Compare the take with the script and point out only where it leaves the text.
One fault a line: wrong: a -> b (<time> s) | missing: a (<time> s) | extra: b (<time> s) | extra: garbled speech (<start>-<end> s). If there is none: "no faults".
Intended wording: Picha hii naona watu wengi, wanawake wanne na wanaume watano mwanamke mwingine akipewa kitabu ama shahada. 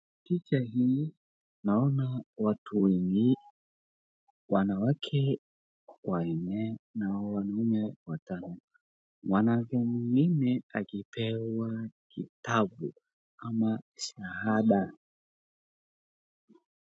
no faults